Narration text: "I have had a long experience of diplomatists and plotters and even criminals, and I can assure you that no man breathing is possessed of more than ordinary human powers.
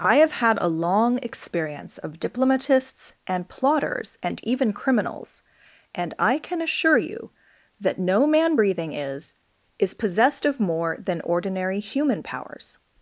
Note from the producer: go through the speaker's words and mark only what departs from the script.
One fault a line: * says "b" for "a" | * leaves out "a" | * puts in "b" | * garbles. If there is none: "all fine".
* puts in "is"